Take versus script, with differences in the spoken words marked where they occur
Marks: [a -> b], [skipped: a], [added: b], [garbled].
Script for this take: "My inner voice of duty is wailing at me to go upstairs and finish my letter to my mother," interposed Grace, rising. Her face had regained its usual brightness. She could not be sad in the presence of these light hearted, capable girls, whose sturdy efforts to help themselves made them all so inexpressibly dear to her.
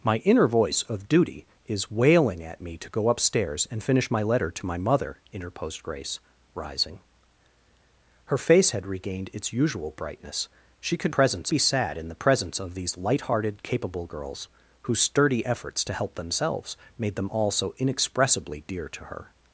"My inner voice of duty is wailing at me to go upstairs and finish my letter to my mother," interposed Grace, rising. Her face had regained its usual brightness. She could [not -> presence] be sad in the presence of these light hearted, capable girls, whose sturdy efforts to help themselves made them all so inexpressibly dear to her.